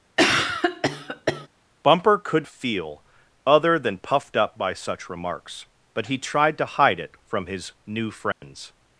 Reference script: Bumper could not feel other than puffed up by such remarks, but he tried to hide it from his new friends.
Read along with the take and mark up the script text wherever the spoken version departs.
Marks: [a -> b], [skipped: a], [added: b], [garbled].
Bumper could [skipped: not] feel other than puffed up by such remarks, but he tried to hide it from his new friends.